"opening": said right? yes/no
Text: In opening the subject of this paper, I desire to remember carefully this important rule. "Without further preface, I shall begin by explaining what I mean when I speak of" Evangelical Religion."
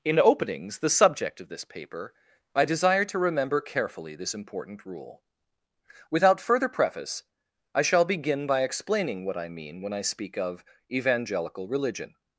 no